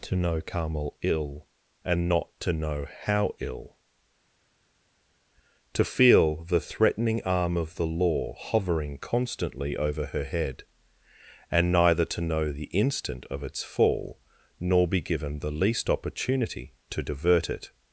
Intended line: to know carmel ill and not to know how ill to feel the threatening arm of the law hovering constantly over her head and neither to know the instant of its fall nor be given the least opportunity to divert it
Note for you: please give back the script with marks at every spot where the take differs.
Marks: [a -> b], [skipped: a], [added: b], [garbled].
to know carmel ill and not to know how ill to feel the threatening arm of the law hovering constantly over her head and neither to know the instant of its fall nor be given the least opportunity to divert it